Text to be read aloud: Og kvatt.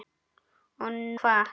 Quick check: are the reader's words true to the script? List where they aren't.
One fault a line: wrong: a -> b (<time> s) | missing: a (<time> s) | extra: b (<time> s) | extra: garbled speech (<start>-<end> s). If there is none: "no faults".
no faults